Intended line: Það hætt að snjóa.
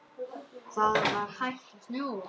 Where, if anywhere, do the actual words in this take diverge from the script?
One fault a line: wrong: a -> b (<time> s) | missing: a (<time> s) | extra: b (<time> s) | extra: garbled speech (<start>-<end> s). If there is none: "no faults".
extra: var (1.1 s)